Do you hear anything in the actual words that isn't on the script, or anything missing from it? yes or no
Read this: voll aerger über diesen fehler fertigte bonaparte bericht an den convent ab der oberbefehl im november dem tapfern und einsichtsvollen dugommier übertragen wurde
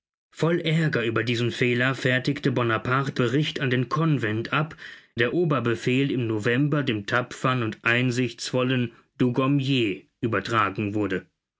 no